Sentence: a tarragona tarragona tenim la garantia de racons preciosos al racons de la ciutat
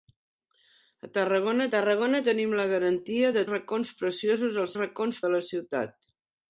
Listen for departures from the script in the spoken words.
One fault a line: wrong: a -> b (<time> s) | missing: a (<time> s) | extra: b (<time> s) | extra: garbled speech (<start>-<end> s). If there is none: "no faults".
no faults